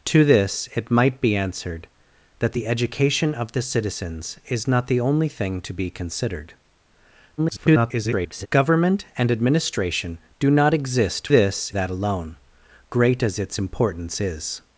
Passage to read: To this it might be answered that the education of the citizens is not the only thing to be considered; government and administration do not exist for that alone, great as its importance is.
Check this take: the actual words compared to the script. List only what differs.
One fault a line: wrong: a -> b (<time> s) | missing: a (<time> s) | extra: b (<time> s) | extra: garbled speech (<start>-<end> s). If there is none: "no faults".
extra: garbled speech (7.4-8.5 s)
wrong: for -> this (11.3 s)